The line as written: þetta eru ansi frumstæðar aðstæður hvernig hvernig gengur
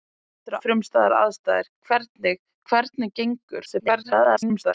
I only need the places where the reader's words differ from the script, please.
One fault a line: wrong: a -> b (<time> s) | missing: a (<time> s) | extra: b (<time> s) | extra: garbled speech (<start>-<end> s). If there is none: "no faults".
missing: ansi (0.6 s)
extra: garbled speech (3.6-4.7 s)